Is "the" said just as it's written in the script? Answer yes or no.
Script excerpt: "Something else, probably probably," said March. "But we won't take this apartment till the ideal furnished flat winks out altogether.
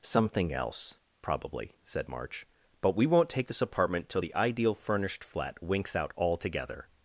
yes